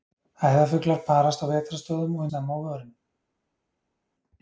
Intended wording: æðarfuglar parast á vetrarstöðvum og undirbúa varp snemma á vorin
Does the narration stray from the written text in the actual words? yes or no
yes